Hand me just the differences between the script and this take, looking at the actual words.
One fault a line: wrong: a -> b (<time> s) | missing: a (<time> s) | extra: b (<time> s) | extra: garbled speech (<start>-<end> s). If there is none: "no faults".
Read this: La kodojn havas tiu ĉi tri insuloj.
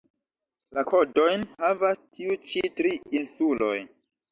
no faults